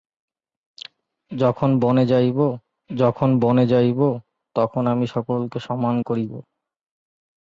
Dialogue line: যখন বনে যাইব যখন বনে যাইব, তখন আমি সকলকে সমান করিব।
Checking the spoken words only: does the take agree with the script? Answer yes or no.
yes